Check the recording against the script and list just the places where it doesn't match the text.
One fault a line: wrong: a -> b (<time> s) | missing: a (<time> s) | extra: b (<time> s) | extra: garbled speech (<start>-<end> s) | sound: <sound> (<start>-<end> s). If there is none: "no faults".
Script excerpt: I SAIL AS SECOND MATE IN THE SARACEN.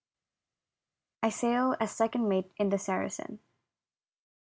no faults